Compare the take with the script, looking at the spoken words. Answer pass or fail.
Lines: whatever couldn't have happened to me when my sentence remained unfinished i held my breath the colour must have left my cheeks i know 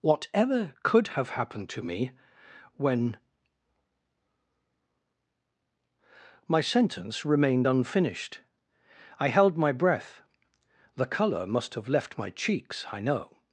fail